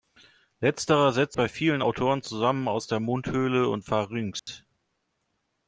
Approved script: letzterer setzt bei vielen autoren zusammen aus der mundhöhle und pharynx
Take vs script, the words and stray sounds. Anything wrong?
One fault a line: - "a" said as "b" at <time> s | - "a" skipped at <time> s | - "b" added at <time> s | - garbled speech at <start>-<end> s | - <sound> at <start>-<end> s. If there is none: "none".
- dropout at 4.4-4.5 s